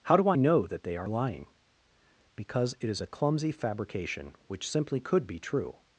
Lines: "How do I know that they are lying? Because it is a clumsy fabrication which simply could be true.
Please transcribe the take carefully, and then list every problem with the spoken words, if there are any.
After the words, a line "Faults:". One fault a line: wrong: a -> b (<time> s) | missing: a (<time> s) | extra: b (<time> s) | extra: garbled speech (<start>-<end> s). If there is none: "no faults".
"How do I know that they are lying? Because it is a clumsy fabrication which simply could be true.
Faults:
no faults